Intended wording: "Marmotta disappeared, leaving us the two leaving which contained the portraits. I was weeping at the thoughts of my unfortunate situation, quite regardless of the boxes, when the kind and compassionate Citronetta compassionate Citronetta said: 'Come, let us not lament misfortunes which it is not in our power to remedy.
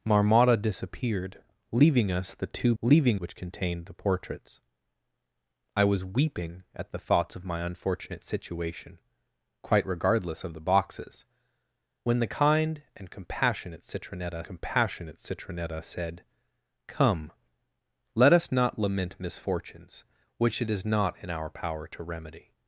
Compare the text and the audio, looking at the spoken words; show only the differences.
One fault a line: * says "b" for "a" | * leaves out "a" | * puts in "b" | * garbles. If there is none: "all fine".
all fine